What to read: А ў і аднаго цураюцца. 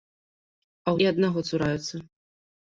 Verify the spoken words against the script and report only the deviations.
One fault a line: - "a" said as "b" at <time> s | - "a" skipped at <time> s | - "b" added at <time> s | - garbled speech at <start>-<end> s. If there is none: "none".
none